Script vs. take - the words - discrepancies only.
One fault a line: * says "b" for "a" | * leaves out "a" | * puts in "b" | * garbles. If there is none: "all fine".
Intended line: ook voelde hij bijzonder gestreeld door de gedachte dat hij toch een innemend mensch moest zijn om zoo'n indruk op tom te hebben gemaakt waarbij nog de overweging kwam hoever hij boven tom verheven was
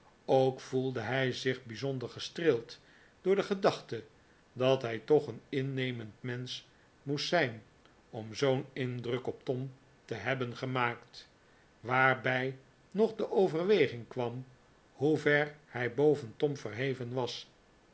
* puts in "zich"